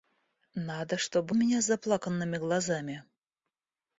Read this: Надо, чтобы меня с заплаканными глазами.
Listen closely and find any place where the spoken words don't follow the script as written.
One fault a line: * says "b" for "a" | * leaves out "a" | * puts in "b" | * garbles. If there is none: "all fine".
all fine